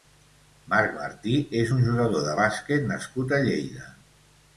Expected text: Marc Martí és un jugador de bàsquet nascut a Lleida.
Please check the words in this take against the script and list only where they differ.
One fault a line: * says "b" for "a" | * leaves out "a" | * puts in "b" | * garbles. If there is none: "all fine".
all fine